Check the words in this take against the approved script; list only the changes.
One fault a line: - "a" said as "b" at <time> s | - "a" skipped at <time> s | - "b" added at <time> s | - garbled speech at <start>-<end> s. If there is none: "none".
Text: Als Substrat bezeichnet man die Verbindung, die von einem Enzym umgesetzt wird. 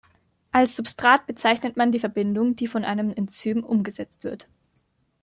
none